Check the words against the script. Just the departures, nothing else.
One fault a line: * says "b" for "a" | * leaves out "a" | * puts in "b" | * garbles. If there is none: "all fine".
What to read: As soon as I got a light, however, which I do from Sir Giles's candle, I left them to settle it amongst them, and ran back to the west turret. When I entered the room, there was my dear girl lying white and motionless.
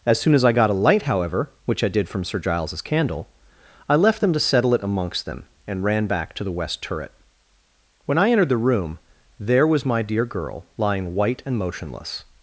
* says "did" for "do"